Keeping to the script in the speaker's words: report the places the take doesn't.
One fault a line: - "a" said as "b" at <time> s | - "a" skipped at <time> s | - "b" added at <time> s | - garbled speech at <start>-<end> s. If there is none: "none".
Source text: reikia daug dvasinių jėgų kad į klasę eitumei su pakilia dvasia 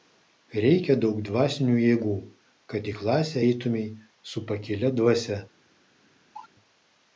none